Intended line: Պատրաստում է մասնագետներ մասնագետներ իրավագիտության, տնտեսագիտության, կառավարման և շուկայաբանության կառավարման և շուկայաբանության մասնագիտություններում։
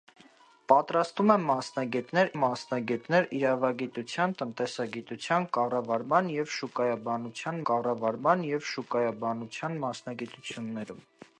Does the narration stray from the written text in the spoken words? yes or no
no